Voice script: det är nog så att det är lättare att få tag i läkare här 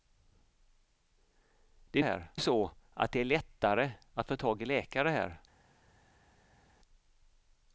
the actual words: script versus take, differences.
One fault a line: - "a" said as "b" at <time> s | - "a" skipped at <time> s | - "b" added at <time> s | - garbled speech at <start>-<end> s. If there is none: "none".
- "nog" said as "här" at 2.0 s